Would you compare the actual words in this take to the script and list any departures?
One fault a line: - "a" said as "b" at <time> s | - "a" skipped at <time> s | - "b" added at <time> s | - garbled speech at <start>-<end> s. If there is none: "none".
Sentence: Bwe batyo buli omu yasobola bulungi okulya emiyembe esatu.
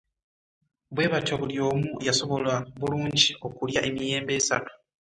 none